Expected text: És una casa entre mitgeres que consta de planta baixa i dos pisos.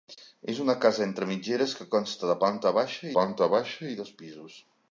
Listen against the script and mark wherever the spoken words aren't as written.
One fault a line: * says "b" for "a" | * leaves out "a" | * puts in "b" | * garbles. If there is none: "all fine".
* puts in "planta baixa"